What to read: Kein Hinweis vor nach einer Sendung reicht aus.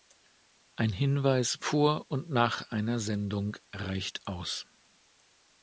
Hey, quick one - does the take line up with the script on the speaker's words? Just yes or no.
no